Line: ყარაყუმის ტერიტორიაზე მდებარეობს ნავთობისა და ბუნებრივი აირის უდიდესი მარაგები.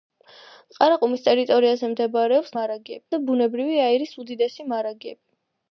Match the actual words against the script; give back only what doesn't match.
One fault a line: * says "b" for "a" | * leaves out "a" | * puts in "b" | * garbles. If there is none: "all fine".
* says "მარაგები" for "ნავთობისა"